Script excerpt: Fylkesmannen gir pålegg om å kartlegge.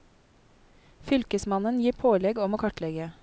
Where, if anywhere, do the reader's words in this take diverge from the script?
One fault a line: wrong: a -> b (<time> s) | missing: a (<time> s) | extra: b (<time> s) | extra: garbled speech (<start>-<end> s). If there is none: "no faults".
no faults